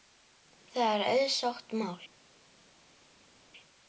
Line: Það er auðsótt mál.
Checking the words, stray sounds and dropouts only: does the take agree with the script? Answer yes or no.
yes